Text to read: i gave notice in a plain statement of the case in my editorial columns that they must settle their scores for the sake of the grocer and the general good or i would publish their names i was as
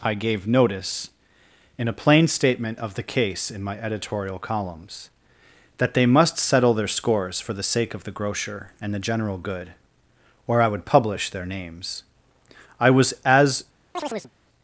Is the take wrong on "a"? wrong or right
right